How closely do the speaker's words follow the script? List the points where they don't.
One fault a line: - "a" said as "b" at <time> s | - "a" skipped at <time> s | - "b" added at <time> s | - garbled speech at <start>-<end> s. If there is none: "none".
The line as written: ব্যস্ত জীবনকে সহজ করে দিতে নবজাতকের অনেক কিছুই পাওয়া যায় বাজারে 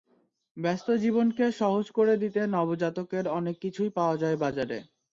none